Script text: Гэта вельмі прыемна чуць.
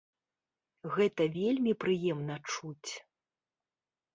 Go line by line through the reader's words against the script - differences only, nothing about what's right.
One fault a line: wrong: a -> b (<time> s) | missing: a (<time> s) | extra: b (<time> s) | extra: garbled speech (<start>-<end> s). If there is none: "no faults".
no faults